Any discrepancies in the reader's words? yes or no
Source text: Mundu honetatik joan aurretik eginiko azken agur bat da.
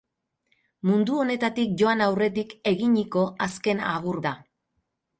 yes